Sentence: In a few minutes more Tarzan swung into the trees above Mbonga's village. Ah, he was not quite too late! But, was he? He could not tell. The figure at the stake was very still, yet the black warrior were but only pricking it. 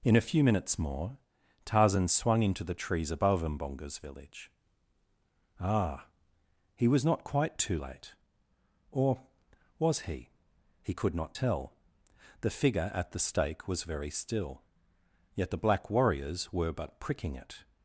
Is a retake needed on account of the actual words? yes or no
yes